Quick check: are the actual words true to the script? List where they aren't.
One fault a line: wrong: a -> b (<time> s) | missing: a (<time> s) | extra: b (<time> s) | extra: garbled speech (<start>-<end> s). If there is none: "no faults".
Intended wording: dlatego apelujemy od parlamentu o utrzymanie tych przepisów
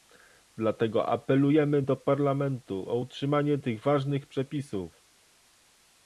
wrong: od -> do (1.8 s)
extra: ważnych (3.8 s)